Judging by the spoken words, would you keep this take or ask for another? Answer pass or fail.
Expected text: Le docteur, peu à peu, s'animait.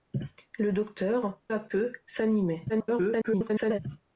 fail